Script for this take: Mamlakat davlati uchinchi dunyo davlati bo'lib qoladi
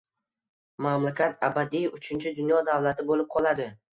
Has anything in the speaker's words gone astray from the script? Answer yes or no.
yes